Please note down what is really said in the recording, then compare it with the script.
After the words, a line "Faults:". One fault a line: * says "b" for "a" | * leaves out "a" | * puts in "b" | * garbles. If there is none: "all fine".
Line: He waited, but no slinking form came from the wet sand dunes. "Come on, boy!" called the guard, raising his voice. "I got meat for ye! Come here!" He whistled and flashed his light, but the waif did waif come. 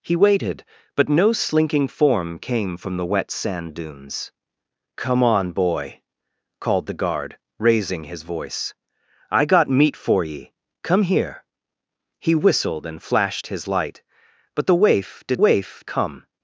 He waited, but no slinking form came from the wet sand dunes. "Come on, boy!" called the guard, raising his voice. "I got meat for ye! Come here!" He whistled and flashed his light, but the waif did waif come.
Faults:
all fine